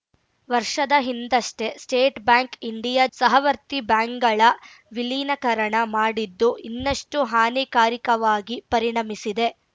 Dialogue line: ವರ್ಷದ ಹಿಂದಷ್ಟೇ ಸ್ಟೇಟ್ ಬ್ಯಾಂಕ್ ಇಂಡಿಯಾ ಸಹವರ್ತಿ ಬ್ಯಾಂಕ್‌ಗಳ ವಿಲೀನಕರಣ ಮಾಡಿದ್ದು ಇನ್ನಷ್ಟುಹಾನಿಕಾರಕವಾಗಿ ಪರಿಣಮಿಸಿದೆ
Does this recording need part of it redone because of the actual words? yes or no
no